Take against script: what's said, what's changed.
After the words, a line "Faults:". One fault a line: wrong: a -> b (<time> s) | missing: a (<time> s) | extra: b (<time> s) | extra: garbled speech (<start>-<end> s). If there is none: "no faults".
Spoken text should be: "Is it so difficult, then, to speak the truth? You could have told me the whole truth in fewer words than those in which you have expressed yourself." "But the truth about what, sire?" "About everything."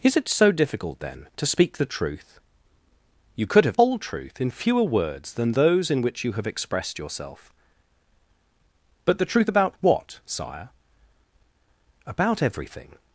"Is it so difficult, then, to speak the truth? You could have whole truth in fewer words than those in which you have expressed yourself." "But the truth about what, sire?" "About everything."
Faults:
missing: told me the (3.8 s)